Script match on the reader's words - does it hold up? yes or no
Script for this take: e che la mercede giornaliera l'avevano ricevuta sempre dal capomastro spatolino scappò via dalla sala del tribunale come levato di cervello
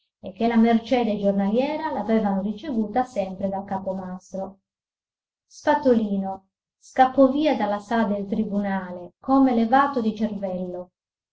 yes